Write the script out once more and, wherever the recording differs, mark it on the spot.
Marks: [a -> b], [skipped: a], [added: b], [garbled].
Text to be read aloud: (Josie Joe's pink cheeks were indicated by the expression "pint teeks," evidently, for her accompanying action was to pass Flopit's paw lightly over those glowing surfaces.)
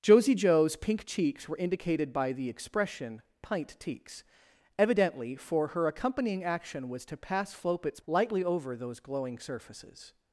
(Josie Joe's pink cheeks were indicated by the expression "pint teeks," evidently, for her accompanying action was to pass Flopit's [skipped: paw] lightly over those glowing surfaces.)